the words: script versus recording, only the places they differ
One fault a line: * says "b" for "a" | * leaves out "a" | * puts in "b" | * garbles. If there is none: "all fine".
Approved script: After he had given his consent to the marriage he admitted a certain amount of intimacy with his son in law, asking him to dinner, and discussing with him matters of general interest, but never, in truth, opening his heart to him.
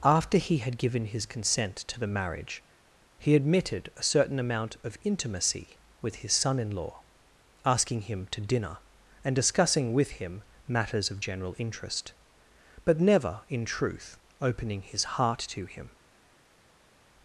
all fine